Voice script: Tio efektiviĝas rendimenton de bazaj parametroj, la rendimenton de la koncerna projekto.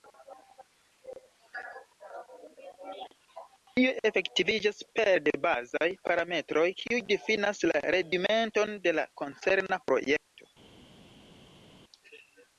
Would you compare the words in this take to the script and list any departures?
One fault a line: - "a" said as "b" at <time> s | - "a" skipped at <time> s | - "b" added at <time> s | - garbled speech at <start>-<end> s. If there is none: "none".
- "rendimenton" said as "pere" at 5.0 s
- "kiuj difinas" added at 6.8 s